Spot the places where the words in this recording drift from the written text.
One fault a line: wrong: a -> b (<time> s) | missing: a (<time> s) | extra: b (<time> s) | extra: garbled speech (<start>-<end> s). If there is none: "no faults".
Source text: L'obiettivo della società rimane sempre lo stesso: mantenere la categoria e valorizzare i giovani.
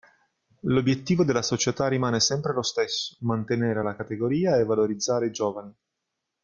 no faults